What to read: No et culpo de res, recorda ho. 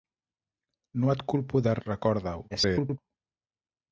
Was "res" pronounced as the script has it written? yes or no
no